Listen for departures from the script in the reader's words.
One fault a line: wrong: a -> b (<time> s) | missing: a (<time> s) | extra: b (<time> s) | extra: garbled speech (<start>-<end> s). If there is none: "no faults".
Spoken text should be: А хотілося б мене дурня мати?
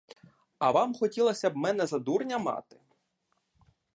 extra: вам (0.7 s)
extra: за (1.8 s)